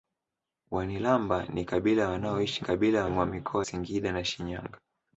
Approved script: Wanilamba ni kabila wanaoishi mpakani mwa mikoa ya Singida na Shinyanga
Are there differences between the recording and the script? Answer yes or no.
yes